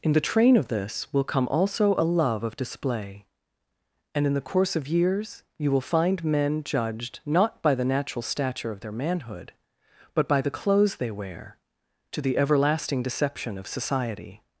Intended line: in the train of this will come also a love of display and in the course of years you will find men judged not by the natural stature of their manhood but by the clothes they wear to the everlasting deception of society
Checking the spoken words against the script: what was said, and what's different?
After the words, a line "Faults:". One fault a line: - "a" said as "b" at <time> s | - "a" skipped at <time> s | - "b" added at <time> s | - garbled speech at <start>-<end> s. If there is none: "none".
in the train of this will come also a love of display and in the course of years you will find men judged not by the natural stature of their manhood but by the clothes they wear to the everlasting deception of society
Faults:
none